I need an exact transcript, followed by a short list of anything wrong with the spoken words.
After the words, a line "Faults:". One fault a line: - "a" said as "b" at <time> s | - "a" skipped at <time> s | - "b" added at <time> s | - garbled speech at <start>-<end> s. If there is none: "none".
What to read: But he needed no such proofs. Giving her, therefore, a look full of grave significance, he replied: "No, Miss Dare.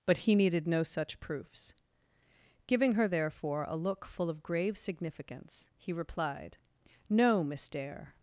But he needed no such proofs. Giving her, therefore, a look full of grave significance, he replied: "No, Miss Dare.
Faults:
none